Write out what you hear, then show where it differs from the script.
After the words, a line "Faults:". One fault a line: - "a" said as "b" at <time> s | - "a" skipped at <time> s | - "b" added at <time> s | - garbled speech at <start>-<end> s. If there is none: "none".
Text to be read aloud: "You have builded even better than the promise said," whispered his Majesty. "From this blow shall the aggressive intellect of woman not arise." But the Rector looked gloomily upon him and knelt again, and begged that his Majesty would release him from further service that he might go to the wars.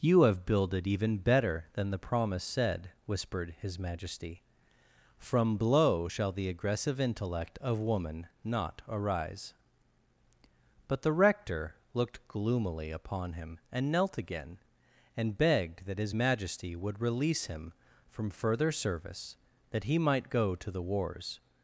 "You have builded even better than the promise said," whispered his Majesty. "From blow shall the aggressive intellect of woman not arise." But the Rector looked gloomily upon him and knelt again, and begged that his Majesty would release him from further service that he might go to the wars.
Faults:
- "this" skipped at 5.6 s